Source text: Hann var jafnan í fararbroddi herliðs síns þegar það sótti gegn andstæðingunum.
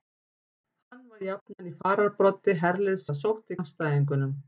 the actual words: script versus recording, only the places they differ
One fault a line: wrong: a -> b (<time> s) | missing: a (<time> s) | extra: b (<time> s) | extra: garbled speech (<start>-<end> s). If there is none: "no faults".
missing: síns þegar (3.0 s)
missing: gegn (3.6 s)